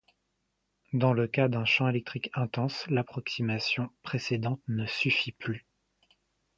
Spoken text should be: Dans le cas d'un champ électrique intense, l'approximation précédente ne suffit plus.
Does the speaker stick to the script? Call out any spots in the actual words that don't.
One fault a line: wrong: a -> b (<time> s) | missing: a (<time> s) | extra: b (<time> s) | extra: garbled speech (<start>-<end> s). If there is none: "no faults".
no faults